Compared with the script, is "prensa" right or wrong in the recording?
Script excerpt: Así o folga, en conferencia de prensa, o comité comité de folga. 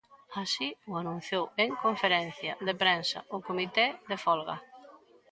right